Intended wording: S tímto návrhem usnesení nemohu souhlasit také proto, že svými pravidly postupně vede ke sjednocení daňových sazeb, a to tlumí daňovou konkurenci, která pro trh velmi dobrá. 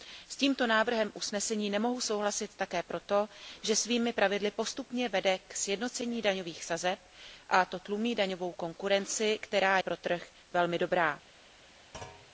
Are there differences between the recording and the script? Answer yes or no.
no